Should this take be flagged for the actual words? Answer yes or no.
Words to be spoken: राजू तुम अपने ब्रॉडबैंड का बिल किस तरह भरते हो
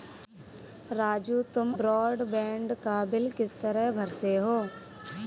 yes